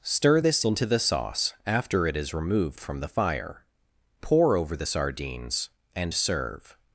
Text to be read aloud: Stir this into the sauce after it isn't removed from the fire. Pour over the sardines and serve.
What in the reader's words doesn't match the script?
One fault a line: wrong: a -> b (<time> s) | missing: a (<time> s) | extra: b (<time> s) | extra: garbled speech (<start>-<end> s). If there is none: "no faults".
wrong: isn't -> is (2.2 s)